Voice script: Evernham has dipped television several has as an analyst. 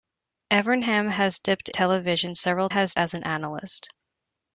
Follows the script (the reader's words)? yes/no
yes